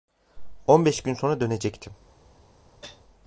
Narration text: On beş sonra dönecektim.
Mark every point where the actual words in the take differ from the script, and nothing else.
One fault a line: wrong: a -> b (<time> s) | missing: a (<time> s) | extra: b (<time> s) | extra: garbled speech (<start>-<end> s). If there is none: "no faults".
extra: gün (1.0 s)